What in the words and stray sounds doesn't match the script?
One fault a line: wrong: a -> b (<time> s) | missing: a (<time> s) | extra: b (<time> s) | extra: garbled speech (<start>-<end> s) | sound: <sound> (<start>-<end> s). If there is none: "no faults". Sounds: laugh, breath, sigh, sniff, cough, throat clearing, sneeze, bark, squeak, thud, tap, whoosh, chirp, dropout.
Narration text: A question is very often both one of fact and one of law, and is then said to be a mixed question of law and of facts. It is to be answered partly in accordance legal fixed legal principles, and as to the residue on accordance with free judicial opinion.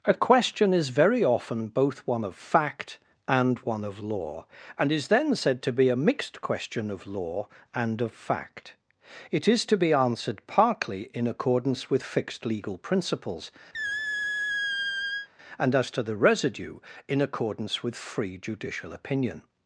wrong: facts -> fact (8.1 s)
wrong: legal -> with (11.9 s)
sound: squeak (13.7-15.3 s)
wrong: on -> in (17.1 s)